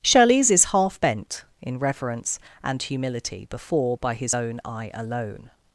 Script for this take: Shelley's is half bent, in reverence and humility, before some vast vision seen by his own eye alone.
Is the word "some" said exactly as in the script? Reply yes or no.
no